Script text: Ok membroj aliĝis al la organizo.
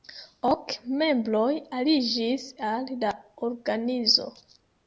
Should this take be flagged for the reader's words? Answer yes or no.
no